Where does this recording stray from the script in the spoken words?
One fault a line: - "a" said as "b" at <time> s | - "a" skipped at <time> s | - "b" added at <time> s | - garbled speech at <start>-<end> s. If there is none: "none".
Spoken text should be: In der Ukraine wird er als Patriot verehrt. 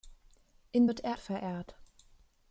- "der Ukraine" skipped at 0.9 s
- "als Patriot" skipped at 1.2 s